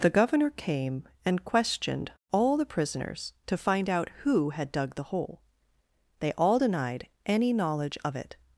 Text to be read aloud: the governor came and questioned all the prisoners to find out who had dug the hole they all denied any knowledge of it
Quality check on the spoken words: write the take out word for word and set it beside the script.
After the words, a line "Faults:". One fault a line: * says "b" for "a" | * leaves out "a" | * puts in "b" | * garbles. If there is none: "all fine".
the governor came and questioned all the prisoners to find out who had dug the hole they all denied any knowledge of it
Faults:
all fine